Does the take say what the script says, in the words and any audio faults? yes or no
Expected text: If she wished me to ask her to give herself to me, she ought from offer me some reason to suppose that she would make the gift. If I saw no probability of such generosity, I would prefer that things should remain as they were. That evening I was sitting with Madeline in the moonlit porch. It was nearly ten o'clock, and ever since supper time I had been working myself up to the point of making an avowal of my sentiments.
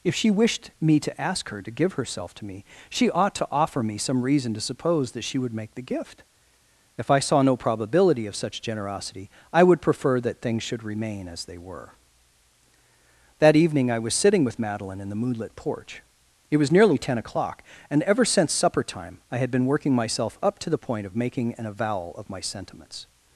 no